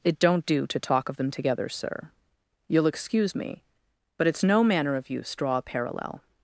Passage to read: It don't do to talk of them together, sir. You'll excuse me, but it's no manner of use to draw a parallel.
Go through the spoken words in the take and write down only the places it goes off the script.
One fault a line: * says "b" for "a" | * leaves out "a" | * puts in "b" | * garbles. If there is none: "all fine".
* leaves out "to"